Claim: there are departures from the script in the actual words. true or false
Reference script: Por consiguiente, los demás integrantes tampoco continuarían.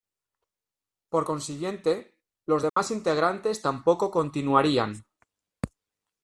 false